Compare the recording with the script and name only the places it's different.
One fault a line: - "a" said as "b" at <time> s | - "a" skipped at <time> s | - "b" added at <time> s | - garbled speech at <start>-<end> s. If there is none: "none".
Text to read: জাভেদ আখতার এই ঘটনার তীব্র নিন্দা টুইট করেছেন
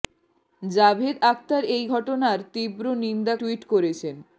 none